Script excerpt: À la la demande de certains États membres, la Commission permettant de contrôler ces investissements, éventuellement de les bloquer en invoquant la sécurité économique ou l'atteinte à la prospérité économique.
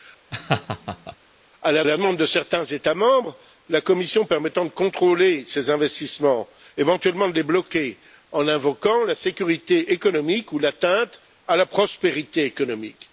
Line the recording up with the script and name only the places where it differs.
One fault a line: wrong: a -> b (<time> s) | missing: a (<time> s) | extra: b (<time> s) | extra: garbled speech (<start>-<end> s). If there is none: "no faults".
no faults